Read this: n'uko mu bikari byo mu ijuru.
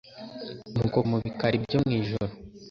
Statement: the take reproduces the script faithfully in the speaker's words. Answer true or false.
true